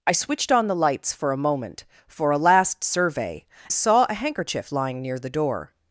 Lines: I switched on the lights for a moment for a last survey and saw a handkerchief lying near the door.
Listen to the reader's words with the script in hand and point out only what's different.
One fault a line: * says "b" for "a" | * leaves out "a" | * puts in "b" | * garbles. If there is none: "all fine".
* leaves out "and"